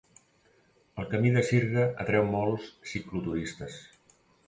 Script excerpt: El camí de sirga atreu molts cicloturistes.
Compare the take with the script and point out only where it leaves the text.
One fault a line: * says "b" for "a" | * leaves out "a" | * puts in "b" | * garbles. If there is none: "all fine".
all fine